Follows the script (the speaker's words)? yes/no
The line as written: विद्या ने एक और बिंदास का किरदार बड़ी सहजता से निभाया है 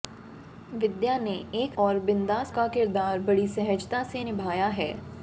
yes